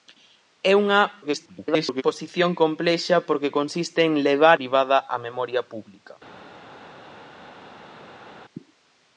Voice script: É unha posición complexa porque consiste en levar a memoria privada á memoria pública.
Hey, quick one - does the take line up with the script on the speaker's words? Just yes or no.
no